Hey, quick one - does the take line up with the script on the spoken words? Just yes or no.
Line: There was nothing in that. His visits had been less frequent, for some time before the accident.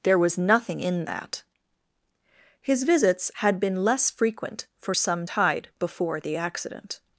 no